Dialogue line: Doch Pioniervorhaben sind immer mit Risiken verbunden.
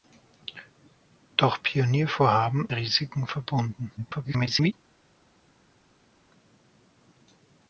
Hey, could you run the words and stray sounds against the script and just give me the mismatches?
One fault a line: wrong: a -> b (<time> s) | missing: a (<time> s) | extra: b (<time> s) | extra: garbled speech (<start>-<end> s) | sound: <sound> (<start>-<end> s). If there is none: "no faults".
missing: sind immer mit (2.7 s)
extra: garbled speech (4.0-4.7 s)